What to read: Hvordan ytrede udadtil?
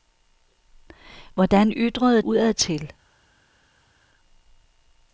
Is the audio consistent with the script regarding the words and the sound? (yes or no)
yes